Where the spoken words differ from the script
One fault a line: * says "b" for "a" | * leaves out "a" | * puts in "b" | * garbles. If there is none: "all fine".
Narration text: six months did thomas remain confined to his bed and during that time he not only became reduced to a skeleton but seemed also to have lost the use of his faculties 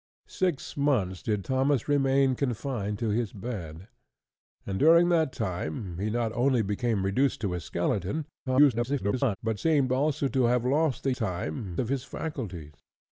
* garbles
* says "time" for "use"